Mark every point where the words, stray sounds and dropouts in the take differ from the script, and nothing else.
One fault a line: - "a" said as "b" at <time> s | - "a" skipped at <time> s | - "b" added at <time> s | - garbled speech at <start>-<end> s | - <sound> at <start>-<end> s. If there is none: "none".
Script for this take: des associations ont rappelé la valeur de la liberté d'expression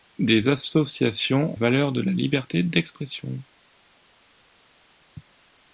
- "ont rappelé la" skipped at 1.5 s